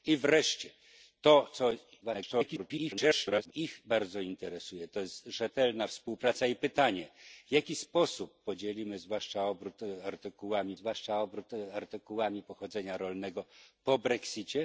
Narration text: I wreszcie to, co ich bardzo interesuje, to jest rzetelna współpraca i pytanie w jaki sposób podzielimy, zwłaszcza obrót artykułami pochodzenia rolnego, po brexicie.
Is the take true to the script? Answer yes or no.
no